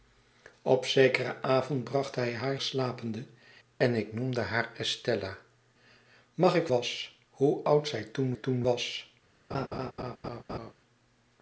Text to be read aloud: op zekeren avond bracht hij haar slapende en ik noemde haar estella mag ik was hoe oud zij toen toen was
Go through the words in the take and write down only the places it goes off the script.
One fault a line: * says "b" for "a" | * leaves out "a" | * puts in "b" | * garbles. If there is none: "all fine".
all fine